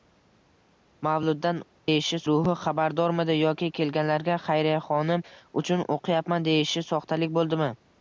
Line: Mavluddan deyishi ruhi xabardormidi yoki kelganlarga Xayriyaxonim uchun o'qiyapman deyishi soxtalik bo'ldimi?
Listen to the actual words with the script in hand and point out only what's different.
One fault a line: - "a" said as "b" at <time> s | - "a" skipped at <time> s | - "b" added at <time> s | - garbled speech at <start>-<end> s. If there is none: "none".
none